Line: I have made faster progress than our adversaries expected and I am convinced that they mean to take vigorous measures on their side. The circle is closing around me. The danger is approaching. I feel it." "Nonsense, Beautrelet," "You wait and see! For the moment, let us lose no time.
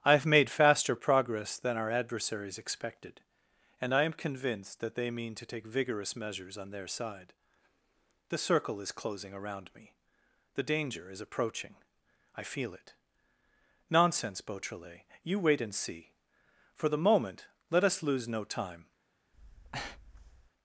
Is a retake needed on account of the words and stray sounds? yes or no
yes